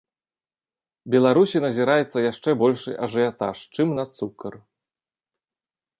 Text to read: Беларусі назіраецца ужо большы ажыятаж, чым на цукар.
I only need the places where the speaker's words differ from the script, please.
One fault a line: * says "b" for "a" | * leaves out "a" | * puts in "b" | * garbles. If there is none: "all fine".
* says "яшчэ" for "ужо"